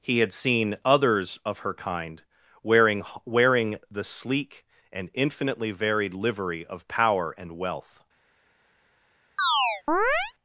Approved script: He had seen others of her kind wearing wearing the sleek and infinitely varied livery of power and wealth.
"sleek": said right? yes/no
yes